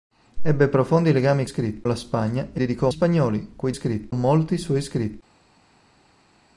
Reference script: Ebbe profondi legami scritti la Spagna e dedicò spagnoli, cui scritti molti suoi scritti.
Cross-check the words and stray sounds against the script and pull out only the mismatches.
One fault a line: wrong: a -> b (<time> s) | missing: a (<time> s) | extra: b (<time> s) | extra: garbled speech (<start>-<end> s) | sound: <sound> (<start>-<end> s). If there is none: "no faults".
no faults